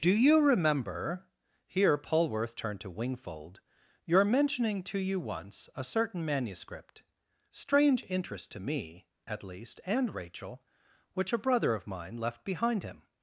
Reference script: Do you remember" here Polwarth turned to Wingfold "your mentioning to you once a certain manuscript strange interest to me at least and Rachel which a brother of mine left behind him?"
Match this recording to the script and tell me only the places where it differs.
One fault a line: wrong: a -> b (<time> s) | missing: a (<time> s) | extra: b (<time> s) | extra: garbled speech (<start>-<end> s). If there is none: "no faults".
no faults